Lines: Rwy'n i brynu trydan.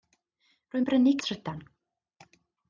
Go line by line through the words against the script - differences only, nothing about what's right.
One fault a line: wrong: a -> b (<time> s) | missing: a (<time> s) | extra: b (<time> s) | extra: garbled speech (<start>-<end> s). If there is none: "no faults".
no faults